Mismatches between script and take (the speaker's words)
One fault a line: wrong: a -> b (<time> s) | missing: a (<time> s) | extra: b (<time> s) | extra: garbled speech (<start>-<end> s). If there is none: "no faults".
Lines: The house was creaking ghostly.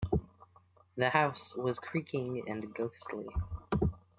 extra: and (2.5 s)